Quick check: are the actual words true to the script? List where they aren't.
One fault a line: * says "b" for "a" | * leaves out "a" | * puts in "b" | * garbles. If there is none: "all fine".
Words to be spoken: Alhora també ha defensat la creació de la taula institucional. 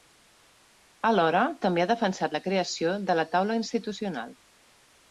all fine